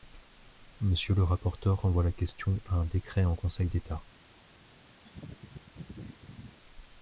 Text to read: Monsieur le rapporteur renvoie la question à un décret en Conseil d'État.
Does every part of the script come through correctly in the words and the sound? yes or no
no